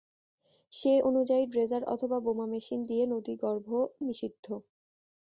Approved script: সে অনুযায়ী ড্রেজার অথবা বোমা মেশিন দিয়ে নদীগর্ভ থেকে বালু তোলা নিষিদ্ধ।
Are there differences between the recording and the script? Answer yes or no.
yes